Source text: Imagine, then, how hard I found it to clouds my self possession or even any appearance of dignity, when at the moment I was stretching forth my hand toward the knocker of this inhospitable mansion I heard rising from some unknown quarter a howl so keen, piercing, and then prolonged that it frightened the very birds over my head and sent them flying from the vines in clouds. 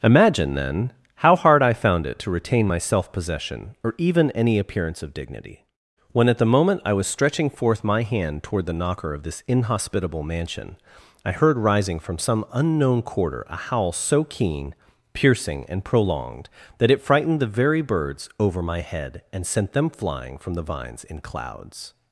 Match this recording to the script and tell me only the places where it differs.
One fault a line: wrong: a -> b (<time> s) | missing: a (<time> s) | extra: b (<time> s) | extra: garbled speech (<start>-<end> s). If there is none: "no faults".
wrong: clouds -> retain (2.3 s)
missing: then (15.8 s)